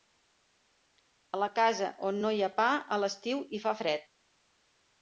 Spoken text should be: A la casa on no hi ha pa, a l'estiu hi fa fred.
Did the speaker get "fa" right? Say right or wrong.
right